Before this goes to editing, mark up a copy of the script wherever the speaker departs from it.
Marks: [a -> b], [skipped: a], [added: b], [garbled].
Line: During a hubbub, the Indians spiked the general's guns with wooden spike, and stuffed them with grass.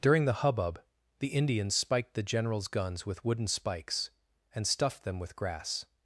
During [a -> the] hubbub, the Indians spiked the general's guns with wooden [spike, -> spikes] and stuffed them with grass.